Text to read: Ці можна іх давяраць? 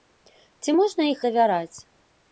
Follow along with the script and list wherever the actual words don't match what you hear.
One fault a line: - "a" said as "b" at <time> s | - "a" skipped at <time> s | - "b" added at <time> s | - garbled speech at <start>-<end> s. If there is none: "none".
none